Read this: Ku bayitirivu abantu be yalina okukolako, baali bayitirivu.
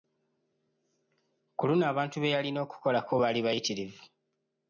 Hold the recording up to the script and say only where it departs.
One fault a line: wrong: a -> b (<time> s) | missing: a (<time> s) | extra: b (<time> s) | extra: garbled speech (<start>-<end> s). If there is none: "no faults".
wrong: bayitirivu -> luno (1.7 s)